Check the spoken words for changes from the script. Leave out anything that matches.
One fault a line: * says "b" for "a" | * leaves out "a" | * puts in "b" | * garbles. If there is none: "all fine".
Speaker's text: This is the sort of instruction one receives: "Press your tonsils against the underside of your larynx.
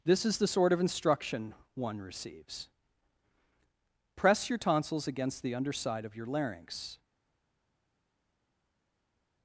all fine